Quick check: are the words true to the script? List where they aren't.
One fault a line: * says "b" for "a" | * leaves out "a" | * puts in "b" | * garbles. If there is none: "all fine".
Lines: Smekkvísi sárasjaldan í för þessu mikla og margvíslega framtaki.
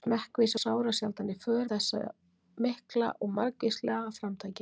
all fine